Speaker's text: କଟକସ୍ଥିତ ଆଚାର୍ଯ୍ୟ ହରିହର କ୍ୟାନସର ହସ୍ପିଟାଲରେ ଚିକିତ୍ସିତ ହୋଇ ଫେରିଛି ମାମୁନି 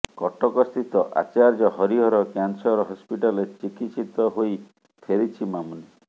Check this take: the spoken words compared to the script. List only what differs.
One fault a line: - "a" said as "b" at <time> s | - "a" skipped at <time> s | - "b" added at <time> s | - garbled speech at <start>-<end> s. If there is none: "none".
none